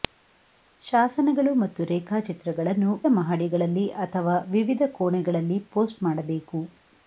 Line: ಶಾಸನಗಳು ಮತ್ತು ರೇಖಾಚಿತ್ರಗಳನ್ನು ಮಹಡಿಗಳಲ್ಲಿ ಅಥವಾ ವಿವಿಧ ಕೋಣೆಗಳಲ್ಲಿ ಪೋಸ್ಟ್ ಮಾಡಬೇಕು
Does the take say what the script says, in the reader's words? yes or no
yes